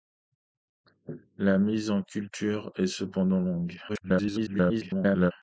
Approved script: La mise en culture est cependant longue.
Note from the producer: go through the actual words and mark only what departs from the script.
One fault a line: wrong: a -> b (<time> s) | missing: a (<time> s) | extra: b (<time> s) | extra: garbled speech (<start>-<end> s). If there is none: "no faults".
extra: garbled speech (3.9-5.3 s)